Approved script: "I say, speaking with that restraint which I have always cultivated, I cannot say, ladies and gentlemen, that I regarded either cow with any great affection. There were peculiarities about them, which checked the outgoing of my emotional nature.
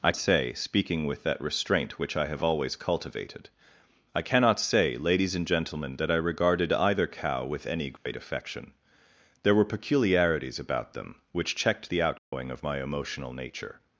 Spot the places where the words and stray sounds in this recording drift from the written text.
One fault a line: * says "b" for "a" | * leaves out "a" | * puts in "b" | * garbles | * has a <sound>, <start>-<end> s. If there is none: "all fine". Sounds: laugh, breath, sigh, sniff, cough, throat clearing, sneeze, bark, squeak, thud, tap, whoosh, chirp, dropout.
* has a dropout, 8.0-8.1 s
* has a dropout, 12.2-12.3 s